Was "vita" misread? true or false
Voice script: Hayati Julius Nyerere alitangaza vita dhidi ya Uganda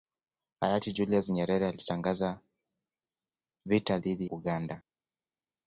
false